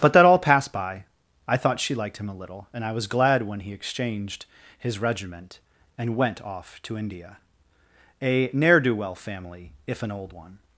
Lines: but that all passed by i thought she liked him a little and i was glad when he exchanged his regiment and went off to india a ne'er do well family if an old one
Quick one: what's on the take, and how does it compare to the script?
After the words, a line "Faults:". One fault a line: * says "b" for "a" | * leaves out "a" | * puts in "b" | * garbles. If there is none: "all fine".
but that all passed by i thought she liked him a little and i was glad when he exchanged his regiment and went off to india a ne'er do well family if an old one
Faults:
all fine